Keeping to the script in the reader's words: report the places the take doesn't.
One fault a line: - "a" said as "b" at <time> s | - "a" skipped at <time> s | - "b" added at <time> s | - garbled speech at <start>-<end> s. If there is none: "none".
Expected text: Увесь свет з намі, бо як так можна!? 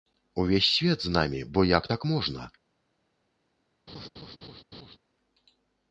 none